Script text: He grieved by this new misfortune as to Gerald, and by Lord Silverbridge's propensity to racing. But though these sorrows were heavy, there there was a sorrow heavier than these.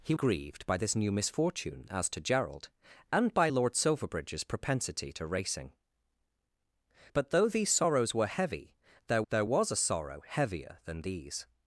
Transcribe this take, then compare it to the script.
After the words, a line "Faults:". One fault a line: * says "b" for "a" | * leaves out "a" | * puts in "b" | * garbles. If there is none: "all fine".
He grieved by this new misfortune as to Gerald, and by Lord Silverbridge's propensity to racing. But though these sorrows were heavy, there there was a sorrow heavier than these.
Faults:
all fine